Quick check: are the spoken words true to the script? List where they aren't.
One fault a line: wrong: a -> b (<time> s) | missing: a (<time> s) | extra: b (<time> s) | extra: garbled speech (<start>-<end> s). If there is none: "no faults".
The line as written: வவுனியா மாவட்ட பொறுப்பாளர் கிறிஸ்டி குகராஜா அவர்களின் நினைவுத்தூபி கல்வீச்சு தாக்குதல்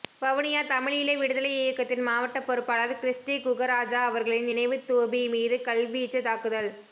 extra: தமிழீழ விடுதலை இயக்கத்தின் (0.7 s)
extra: மீது (5.3 s)